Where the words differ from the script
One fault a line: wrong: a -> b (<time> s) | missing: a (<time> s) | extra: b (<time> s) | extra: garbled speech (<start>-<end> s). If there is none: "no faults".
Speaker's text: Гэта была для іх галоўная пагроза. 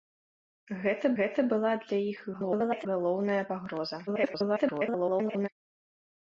extra: гэта (1.2 s)
extra: garbled speech (2.3-2.9 s)
extra: garbled speech (4.1-5.5 s)